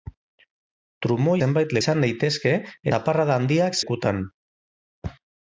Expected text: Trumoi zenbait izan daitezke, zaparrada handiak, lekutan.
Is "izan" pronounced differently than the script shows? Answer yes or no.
no